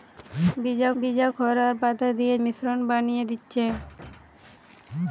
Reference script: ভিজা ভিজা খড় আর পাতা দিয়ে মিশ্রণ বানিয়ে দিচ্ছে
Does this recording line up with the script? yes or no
yes